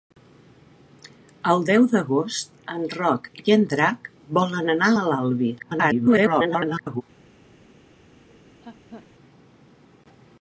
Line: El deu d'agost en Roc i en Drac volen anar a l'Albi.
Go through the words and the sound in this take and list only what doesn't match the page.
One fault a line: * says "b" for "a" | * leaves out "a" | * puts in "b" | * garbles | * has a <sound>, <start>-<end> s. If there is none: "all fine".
* garbles
* has a laugh, 8.3-9.1 s